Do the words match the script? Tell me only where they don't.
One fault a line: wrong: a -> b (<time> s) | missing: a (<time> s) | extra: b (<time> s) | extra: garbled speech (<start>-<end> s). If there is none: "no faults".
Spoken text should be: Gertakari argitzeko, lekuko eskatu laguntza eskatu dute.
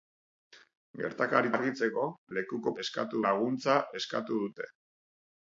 no faults